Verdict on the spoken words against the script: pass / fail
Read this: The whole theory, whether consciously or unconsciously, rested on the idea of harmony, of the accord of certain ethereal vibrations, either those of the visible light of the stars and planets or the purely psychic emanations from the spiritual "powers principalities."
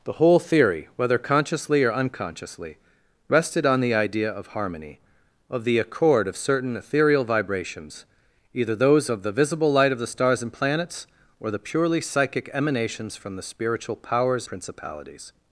pass